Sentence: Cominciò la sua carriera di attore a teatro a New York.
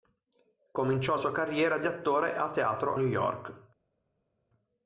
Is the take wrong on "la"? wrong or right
wrong